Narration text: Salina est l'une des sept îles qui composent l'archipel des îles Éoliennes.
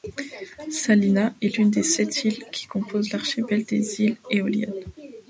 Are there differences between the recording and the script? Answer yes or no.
no